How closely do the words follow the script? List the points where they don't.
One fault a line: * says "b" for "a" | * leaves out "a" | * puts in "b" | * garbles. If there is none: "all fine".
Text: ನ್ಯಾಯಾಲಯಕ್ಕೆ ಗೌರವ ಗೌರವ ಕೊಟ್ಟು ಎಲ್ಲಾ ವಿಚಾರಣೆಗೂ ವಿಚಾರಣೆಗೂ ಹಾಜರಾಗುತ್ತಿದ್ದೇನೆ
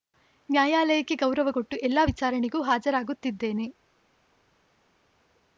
* leaves out "ಗೌರವ"
* leaves out "ವಿಚಾರಣೆಗೂ"